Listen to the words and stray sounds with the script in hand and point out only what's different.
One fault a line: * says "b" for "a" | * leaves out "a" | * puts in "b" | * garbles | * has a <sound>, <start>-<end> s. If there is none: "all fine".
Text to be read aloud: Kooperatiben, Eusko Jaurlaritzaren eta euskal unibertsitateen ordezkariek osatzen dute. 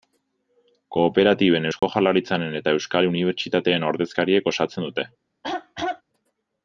* has a dropout, 1.8-1.8 s
* has a throat clearing, 5.4-6.0 s